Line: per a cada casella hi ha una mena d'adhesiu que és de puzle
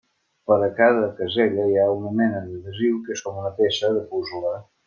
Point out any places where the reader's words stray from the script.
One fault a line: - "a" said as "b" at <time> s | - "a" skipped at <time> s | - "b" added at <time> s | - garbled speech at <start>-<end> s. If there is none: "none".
- "com una peça" added at 3.3 s